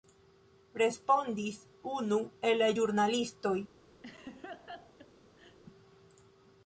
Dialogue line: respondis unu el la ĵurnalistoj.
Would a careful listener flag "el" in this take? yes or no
no